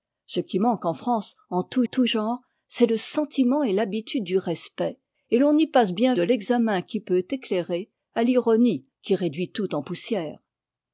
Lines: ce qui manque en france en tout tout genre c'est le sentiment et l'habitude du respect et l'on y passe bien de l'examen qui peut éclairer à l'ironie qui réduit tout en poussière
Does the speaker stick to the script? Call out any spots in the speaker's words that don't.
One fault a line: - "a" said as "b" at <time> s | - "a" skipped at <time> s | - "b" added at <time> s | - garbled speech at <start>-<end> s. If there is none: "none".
none